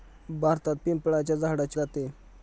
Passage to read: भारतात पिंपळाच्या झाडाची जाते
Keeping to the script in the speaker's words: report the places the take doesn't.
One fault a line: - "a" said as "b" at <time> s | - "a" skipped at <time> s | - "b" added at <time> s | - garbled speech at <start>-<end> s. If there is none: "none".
none